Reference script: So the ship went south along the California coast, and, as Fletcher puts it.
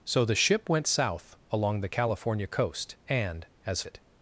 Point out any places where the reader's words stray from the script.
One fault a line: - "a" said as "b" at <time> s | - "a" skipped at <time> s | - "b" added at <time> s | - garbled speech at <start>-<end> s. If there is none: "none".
- "Fletcher puts" skipped at 3.8 s